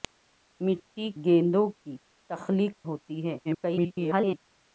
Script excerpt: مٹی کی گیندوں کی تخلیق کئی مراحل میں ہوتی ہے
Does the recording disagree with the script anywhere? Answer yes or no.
yes